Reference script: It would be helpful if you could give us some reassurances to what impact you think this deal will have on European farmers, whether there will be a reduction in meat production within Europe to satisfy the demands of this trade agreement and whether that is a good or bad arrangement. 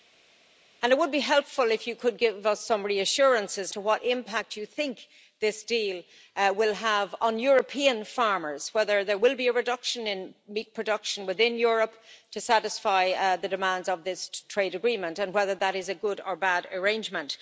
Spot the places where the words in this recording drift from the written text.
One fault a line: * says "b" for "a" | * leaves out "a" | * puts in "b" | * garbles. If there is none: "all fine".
all fine